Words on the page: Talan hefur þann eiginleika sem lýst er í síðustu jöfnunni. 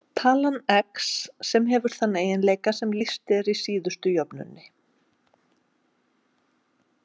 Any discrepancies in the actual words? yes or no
yes